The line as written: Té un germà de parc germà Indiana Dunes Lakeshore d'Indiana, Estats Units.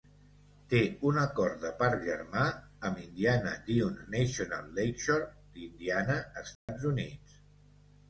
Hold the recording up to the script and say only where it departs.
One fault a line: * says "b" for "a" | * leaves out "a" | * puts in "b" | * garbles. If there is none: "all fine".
* says "acord" for "germà"
* puts in "amb"
* puts in "National"